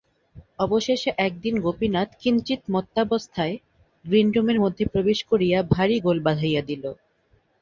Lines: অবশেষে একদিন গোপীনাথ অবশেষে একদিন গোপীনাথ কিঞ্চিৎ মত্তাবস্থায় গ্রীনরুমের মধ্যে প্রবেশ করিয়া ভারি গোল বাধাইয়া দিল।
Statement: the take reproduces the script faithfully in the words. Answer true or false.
false